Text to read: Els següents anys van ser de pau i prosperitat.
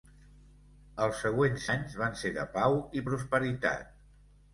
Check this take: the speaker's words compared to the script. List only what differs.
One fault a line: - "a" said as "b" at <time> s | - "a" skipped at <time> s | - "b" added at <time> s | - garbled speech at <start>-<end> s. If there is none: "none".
none